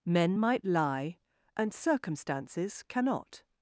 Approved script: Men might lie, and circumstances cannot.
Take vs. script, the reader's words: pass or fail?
pass